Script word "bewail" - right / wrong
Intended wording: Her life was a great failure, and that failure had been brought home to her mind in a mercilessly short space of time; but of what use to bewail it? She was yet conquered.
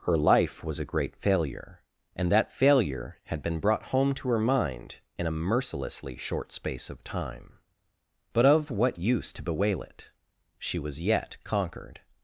right